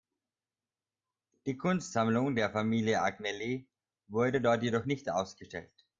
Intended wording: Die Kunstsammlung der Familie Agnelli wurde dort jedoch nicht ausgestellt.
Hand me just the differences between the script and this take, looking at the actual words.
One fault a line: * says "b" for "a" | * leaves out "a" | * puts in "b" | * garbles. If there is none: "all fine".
all fine